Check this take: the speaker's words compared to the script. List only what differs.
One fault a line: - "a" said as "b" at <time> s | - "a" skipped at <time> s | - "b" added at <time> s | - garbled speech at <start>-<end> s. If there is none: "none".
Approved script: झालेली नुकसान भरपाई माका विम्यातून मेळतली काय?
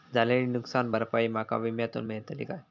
none